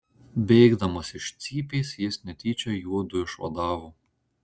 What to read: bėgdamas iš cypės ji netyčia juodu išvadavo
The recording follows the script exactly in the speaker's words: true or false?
false